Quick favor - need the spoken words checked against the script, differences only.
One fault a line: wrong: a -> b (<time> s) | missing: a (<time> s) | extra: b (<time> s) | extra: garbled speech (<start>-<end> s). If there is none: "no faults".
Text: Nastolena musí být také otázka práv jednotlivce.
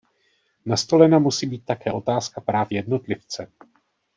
no faults